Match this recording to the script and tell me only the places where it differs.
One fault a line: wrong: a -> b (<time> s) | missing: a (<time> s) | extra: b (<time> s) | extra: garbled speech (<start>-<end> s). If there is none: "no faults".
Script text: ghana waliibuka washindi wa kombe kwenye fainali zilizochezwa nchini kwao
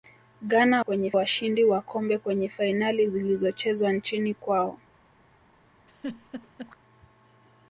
wrong: waliibuka -> kwenye (0.8 s)